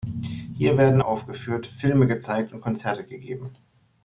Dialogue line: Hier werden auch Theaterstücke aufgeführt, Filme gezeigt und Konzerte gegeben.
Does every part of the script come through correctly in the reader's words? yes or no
no